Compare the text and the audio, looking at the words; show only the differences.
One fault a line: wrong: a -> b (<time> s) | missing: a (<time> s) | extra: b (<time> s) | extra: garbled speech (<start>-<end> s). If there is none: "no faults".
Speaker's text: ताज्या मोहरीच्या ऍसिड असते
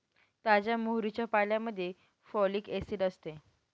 extra: पाल्यामध्ये फॉलिक (1.3 s)